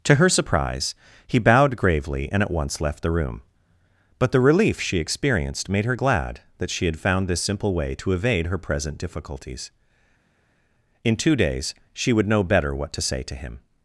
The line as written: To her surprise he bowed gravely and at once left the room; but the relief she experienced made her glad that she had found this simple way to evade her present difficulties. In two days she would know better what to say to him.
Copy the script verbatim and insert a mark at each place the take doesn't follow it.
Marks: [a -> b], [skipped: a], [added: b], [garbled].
To her surprise he bowed gravely and at once left the room; but the relief she experienced made her glad that she had found this simple way to evade her present difficulties. In two days she would know better what to say to him.